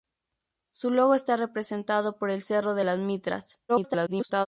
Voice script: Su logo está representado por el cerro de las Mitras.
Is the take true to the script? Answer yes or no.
no